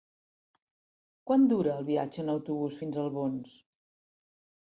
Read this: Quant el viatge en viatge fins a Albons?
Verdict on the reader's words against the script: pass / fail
fail